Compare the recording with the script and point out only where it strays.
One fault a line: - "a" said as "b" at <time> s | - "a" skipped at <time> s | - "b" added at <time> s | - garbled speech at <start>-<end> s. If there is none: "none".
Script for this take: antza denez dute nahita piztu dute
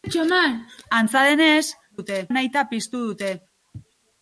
none